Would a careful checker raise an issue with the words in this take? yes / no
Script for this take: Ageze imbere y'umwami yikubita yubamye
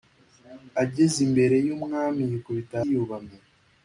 no